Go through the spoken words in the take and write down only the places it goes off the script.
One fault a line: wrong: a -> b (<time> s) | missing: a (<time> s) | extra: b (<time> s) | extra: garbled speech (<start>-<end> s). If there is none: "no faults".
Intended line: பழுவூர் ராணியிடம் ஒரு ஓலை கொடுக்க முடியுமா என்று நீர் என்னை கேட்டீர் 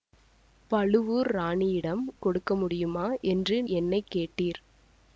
missing: ஒரு ஓலை (2.0 s)
missing: நீர் (3.6 s)